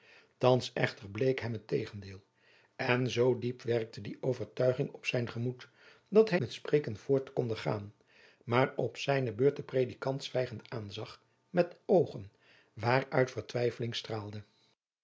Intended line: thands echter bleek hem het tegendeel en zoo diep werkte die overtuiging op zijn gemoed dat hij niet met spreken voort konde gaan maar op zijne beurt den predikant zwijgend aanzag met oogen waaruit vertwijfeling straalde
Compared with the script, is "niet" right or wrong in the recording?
wrong